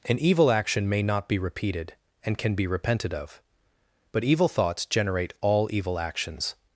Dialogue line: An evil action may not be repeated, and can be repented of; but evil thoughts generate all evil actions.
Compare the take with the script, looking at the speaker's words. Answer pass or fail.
pass